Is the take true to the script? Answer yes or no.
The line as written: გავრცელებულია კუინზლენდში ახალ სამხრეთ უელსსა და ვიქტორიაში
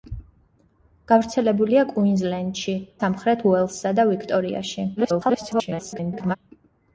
no